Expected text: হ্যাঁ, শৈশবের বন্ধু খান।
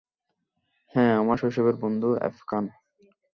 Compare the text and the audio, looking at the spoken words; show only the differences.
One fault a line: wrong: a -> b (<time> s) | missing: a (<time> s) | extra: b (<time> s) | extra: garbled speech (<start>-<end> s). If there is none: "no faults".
extra: আমার (1.2 s)
extra: এফ (2.2 s)